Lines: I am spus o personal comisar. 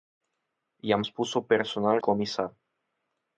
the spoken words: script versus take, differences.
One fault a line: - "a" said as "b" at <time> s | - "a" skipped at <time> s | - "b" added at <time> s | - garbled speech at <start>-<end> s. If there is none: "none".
none